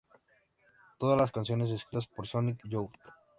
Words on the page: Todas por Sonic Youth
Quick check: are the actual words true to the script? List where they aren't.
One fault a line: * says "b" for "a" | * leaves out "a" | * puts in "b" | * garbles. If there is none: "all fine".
* puts in "las canciones escritas"